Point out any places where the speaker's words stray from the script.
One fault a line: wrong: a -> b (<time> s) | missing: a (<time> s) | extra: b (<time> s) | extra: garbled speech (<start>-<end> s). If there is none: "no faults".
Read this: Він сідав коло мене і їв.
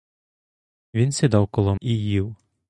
missing: мене (1.8 s)